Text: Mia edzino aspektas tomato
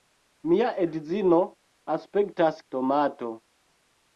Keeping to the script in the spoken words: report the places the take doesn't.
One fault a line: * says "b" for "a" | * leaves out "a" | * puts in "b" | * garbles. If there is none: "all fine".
all fine